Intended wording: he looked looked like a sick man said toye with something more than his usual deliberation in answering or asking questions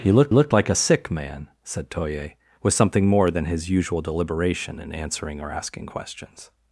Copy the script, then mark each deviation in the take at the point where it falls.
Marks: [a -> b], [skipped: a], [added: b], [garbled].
he looked looked like a sick man said toye with something more than his usual deliberation in answering or asking questions